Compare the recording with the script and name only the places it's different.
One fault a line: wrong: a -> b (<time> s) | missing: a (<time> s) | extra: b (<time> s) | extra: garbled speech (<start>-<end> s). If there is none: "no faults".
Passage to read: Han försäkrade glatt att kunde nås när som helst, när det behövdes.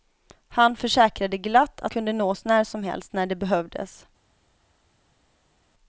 no faults